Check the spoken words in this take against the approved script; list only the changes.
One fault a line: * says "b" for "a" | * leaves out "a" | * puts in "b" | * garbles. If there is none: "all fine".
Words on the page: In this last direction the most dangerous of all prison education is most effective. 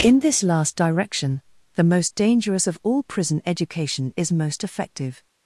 all fine